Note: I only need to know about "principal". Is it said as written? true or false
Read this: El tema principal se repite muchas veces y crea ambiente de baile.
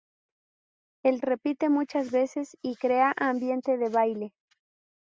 false